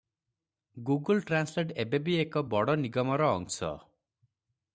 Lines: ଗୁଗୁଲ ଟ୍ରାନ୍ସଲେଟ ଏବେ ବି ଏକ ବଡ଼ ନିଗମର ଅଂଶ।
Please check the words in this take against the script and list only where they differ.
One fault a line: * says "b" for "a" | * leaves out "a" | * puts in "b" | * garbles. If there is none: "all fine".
all fine